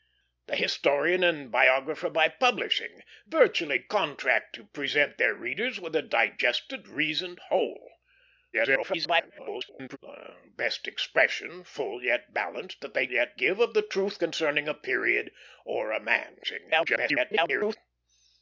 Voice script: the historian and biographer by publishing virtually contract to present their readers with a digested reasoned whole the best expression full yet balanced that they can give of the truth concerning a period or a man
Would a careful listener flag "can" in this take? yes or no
yes